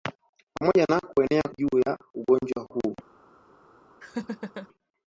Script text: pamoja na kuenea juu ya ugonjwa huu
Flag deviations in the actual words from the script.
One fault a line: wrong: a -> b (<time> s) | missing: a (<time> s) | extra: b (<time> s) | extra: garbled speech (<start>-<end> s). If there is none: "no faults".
no faults